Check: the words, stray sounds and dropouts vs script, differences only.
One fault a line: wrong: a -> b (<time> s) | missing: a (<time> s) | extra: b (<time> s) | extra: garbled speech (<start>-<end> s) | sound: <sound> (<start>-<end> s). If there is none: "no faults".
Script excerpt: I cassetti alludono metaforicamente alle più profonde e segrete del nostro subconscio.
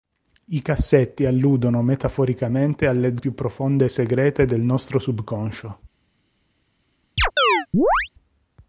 sound: chirp (7.2-8.1 s)